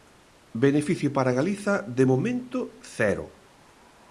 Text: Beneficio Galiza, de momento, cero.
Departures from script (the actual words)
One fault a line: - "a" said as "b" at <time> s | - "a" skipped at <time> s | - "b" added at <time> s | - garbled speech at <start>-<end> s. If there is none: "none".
- "para" added at 1.1 s